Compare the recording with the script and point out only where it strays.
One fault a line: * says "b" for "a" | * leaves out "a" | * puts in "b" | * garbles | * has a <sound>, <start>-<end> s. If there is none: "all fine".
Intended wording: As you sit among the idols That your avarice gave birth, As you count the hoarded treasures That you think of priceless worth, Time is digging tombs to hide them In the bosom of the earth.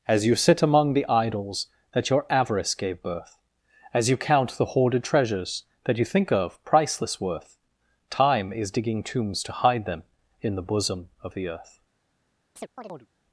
* has a chirp, 12.6-13.1 s